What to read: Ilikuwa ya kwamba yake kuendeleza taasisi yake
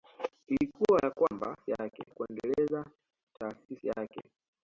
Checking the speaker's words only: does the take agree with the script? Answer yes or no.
yes